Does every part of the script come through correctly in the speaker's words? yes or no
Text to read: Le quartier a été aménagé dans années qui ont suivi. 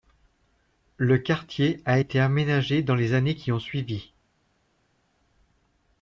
no